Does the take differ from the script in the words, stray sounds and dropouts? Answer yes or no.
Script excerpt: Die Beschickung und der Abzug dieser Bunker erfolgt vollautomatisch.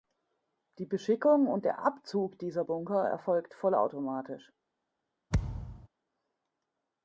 yes